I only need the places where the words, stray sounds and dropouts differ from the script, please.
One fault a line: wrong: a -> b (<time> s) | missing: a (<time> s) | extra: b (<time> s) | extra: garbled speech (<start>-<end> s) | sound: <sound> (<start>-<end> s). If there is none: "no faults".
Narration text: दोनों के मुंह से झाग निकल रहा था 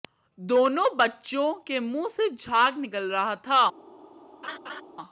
extra: बच्चों (1.0 s)
sound: laugh (4.4-4.8 s)